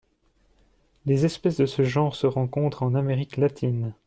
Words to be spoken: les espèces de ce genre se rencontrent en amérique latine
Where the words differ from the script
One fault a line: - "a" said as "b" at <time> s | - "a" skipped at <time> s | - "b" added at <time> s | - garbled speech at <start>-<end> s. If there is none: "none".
none